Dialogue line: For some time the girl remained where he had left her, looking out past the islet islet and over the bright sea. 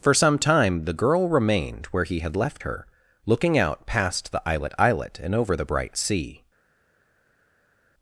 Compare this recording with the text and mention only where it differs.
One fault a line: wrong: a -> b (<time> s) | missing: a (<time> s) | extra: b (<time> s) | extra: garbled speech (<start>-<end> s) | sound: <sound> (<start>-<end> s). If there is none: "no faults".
no faults